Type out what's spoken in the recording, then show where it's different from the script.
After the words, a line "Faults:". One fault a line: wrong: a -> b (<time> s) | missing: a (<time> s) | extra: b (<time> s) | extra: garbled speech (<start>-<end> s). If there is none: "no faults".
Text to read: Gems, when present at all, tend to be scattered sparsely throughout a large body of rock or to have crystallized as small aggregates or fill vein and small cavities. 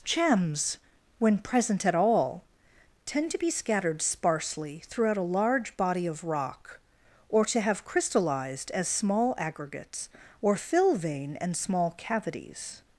Gems, when present at all, tend to be scattered sparsely throughout a large body of rock or to have crystallized as small aggregates or fill vein and small cavities.
Faults:
no faults